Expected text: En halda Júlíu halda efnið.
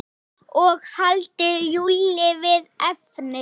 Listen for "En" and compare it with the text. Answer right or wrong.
wrong